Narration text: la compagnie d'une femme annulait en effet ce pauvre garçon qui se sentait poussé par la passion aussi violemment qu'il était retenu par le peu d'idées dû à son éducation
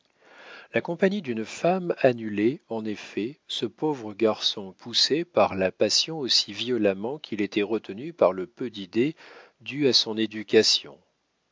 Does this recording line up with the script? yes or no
no